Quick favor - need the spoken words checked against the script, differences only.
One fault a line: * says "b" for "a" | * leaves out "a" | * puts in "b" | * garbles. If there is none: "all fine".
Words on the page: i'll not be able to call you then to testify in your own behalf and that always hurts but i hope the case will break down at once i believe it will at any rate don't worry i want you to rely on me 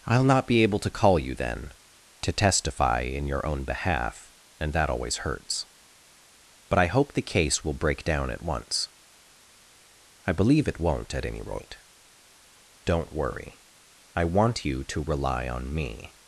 * says "won't" for "will"